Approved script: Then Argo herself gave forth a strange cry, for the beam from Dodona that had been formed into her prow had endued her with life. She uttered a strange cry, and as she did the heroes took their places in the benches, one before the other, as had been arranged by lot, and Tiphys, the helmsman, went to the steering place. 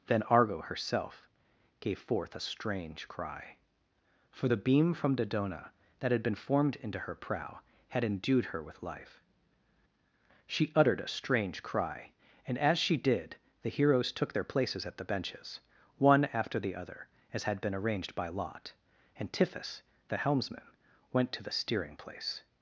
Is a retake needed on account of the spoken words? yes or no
yes